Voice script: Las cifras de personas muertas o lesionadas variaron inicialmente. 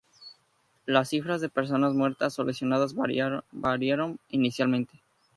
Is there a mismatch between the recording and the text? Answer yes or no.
no